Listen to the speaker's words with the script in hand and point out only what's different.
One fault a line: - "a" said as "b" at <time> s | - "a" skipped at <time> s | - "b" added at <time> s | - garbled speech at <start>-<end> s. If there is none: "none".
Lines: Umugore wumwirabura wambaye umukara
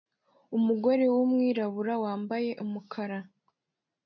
none